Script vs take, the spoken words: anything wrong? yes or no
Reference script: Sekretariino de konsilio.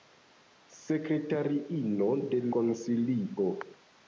no